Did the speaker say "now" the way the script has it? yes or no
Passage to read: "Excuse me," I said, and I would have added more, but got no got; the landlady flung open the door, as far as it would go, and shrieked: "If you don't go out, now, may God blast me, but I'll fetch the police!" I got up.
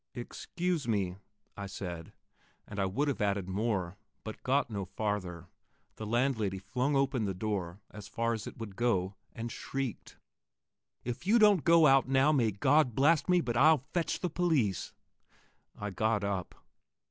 yes